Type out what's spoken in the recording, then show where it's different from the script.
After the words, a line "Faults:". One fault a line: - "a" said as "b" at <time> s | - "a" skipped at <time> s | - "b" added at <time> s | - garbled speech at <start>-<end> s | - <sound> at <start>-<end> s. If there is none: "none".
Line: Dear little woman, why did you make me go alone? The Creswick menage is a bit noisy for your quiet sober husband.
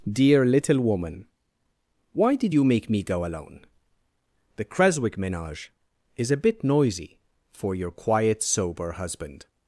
Dear little woman, why did you make me go alone? The Creswick menage is a bit noisy for your quiet sober husband.
Faults:
none